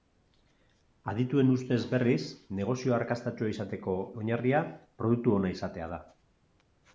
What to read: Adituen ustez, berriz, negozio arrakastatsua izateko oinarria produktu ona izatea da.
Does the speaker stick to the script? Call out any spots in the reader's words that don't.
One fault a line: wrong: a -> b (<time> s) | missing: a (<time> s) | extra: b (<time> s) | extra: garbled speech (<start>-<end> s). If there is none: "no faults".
no faults